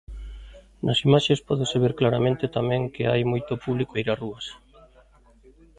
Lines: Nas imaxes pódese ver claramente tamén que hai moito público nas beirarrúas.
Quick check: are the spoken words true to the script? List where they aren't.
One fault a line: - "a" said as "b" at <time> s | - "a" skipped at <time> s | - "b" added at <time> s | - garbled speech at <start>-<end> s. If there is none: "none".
- "nas" skipped at 4.0 s